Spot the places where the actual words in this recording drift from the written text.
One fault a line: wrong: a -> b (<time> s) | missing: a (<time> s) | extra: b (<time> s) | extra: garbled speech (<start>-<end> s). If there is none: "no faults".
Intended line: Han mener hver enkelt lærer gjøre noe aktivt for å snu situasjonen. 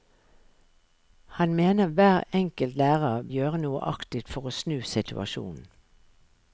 no faults